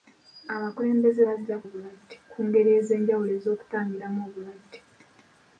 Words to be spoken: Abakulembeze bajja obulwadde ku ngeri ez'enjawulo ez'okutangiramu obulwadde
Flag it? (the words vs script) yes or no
no